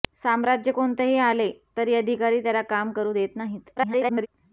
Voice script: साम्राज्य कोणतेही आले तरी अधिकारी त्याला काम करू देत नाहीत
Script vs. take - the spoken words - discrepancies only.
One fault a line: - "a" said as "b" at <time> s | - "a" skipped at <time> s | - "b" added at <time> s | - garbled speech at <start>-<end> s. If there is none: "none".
- garbled speech at 3.8-4.3 s